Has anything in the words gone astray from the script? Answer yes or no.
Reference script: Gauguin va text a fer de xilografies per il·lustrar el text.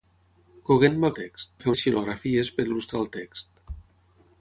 no